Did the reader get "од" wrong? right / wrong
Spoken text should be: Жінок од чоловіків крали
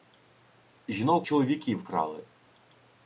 wrong